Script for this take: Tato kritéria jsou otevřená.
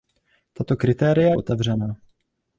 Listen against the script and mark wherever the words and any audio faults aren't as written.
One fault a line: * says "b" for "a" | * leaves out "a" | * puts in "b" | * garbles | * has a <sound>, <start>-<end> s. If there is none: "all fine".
* leaves out "jsou"